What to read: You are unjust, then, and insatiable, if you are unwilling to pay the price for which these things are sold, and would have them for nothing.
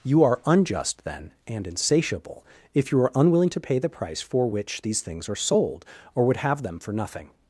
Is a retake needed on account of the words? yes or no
yes